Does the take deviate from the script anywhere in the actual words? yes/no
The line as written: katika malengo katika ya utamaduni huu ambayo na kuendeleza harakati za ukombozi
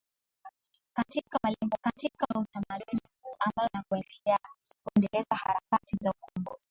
no